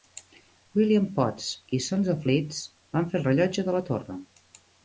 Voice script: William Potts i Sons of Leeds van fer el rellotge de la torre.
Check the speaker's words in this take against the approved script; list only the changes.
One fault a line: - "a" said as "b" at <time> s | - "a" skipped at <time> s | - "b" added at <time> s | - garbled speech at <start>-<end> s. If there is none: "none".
none